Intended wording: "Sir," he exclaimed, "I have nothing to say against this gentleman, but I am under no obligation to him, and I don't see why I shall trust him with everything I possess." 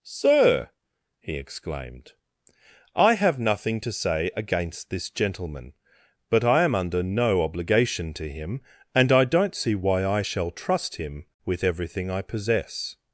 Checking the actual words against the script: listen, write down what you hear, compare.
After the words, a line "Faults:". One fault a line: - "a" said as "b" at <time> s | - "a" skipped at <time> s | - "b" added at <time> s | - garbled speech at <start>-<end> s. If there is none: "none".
"Sir," he exclaimed, "I have nothing to say against this gentleman, but I am under no obligation to him, and I don't see why I shall trust him with everything I possess."
Faults:
none